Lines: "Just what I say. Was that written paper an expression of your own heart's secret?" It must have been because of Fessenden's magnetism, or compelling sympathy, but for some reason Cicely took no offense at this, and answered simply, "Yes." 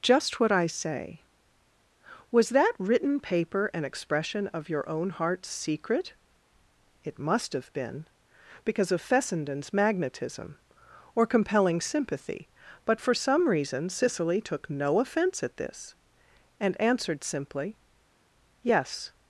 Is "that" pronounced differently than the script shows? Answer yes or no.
no